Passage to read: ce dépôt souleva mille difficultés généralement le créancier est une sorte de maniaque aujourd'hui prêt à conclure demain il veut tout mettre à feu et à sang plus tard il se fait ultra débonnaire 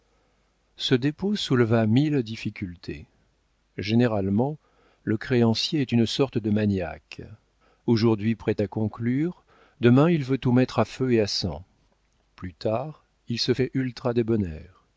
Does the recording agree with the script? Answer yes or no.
yes